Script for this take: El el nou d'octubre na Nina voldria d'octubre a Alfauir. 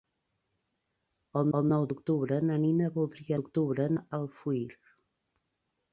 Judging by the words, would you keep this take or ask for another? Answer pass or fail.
pass